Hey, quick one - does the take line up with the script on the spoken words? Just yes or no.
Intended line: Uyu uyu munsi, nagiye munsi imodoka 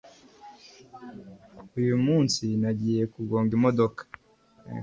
no